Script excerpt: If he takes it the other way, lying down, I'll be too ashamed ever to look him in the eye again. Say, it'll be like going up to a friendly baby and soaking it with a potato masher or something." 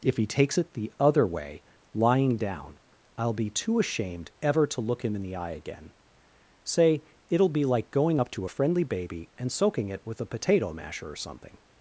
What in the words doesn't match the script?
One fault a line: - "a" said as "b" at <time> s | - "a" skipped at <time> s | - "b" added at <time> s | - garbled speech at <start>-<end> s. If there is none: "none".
none